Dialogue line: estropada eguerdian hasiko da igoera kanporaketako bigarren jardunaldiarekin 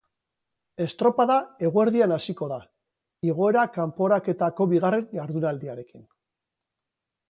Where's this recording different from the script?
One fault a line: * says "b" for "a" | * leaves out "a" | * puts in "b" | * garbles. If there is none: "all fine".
all fine